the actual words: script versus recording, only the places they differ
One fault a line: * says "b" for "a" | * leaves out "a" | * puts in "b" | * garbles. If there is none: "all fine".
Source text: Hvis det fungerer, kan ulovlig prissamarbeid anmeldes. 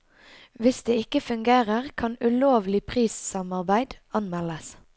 * puts in "ikke"